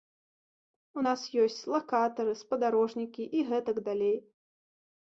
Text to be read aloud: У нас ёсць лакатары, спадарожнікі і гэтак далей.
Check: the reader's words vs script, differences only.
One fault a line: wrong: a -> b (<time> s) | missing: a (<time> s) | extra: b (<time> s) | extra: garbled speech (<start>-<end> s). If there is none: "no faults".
no faults